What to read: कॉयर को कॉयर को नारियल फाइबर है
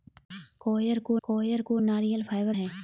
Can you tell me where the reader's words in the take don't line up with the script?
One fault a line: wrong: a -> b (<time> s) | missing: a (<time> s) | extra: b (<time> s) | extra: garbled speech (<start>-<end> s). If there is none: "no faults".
no faults